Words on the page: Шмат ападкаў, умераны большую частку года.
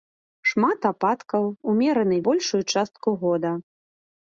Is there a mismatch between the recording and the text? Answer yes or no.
no